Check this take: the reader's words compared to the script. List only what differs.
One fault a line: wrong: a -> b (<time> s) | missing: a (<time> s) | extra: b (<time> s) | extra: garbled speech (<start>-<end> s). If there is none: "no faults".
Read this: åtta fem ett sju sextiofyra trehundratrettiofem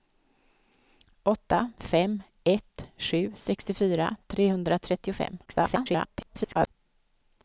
extra: garbled speech (5.5-6.7 s)